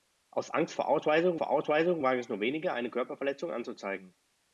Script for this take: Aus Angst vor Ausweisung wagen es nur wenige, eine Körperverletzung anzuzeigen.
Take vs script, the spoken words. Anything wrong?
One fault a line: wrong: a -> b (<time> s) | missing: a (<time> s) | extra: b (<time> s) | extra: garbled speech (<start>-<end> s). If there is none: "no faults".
extra: vor Ausweisung (1.3 s)